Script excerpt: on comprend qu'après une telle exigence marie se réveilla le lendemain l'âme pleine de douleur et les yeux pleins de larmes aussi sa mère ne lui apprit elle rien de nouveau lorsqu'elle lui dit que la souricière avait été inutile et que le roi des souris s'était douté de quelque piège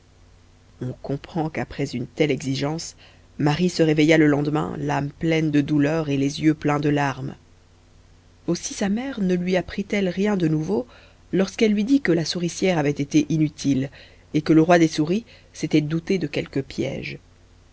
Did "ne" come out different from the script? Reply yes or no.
no